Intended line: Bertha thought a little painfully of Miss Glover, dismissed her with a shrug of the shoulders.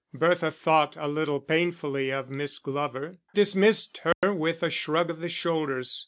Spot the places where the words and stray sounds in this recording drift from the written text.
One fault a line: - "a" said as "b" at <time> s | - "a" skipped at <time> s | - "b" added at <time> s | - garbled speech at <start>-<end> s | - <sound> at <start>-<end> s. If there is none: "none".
- dropout at 4.1-4.2 s